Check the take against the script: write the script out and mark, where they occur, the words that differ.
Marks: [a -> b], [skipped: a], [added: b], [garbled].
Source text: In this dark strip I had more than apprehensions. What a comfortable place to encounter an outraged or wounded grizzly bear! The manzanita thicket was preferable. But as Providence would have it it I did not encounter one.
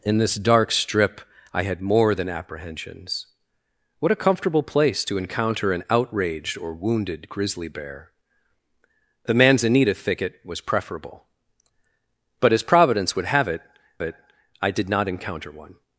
In this dark strip I had more than apprehensions. What a comfortable place to encounter an outraged or wounded grizzly bear! The manzanita thicket was preferable. But as Providence would have it it I did not encounter one.